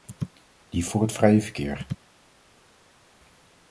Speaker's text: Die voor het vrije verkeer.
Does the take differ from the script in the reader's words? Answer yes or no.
no